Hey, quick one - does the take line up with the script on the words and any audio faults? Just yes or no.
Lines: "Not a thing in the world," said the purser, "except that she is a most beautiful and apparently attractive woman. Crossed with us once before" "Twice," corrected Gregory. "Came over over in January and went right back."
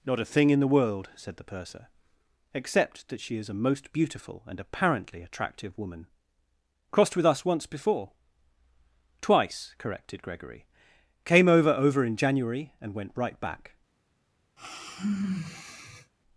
no